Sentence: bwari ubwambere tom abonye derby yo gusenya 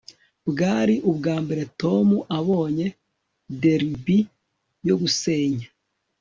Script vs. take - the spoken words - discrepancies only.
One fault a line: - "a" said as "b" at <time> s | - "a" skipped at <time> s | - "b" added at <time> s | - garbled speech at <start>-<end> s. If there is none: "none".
none